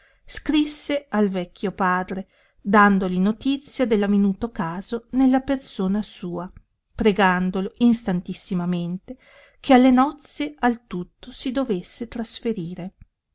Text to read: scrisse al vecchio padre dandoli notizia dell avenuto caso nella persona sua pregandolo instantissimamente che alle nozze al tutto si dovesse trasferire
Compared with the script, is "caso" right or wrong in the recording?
right